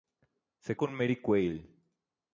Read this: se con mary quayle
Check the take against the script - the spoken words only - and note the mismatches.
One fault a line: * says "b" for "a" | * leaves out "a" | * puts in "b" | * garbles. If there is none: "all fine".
all fine